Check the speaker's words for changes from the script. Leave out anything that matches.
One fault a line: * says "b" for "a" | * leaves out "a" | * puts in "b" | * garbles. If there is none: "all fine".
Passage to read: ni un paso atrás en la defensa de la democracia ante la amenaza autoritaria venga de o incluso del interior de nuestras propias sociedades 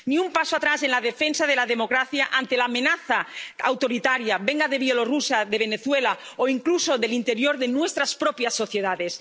* puts in "bielorrusia de venezuela"